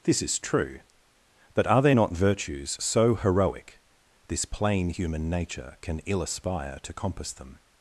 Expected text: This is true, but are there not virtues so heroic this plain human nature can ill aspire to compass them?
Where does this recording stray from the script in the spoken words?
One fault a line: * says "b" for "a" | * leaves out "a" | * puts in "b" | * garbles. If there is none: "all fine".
all fine